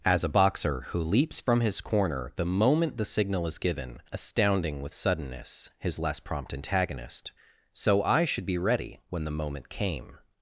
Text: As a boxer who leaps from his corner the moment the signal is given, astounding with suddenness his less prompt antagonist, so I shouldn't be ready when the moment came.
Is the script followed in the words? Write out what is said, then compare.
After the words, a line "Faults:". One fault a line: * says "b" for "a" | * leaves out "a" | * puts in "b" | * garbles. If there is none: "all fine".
As a boxer who leaps from his corner the moment the signal is given, astounding with suddenness his less prompt antagonist, so I should be ready when the moment came.
Faults:
* says "should" for "shouldn't"